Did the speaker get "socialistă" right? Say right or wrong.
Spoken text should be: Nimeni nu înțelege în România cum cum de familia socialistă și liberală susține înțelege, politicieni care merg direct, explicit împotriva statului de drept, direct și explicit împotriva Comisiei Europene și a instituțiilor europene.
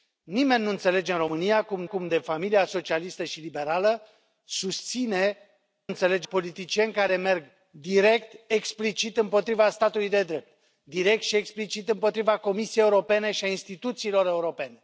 right